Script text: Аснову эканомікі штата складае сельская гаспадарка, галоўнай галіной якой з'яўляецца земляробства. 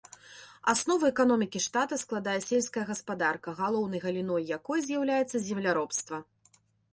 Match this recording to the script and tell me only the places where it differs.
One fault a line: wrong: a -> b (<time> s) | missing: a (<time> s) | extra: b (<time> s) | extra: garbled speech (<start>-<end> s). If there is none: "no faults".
no faults